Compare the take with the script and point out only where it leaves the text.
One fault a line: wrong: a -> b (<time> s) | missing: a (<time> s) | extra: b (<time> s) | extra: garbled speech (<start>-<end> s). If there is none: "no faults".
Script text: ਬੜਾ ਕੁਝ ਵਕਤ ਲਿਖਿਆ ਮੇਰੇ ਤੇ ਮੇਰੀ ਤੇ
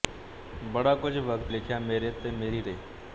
no faults